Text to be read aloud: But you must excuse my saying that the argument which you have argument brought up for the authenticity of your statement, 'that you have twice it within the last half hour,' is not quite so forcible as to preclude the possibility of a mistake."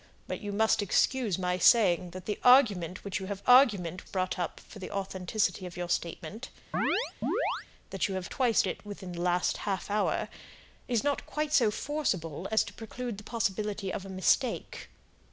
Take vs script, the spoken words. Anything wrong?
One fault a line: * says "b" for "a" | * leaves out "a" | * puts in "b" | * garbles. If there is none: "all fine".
all fine